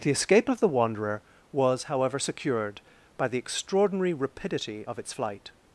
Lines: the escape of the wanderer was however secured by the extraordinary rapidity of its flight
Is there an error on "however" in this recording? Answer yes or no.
no